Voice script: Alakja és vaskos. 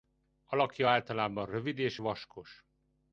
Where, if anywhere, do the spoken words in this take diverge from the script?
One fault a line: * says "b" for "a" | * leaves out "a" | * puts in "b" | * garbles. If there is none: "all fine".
* puts in "általában rövid"